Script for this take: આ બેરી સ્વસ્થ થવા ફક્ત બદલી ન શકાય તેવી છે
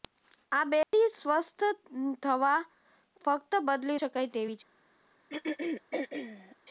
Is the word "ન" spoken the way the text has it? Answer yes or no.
no